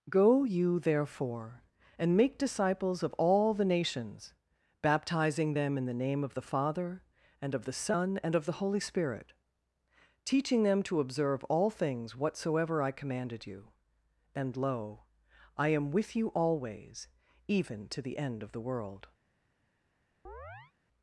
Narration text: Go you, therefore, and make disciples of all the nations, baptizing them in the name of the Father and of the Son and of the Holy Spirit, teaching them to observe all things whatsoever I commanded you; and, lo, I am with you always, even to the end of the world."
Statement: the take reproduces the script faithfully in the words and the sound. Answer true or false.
false